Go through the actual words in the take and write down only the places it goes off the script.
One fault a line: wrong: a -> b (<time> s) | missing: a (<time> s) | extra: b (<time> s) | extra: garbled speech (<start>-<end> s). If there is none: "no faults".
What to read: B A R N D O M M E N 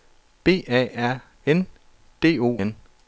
missing: M M E (2.6 s)